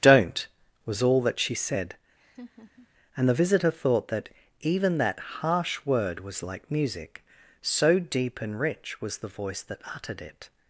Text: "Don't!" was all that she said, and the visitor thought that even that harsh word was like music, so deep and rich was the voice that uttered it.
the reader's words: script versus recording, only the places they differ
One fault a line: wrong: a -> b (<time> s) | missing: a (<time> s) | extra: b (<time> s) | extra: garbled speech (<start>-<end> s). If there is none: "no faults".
no faults